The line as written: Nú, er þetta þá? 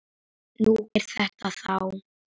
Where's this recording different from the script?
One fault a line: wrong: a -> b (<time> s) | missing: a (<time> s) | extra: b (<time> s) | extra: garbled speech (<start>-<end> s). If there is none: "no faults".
no faults